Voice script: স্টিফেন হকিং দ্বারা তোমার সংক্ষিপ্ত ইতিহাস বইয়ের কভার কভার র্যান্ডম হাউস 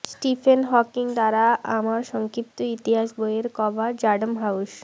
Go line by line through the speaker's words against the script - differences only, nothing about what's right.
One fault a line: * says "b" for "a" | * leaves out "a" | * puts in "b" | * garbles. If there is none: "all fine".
* says "আমার" for "তোমার"
* leaves out "কভার"